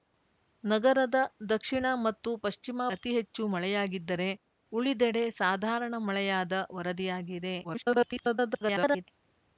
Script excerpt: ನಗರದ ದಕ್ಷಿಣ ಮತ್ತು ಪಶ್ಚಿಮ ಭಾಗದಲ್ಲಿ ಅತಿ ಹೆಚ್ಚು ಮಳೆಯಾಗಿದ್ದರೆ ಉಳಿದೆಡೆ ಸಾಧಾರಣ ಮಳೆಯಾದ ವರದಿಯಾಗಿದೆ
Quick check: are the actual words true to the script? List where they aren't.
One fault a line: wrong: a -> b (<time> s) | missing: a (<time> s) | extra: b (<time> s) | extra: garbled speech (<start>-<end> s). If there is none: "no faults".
missing: ಭಾಗದಲ್ಲಿ (2.9 s)
extra: garbled speech (7.6-9.0 s)